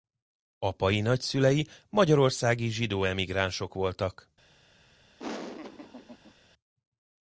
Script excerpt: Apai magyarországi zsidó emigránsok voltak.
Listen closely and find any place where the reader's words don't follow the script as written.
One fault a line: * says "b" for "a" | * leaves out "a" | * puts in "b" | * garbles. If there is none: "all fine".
* puts in "nagyszülei"